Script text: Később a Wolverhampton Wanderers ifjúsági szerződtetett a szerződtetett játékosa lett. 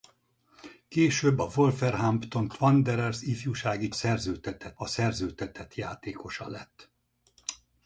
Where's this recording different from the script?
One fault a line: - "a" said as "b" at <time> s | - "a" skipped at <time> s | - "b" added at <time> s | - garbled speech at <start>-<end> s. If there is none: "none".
none